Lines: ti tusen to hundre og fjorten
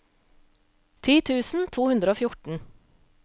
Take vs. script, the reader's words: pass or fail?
pass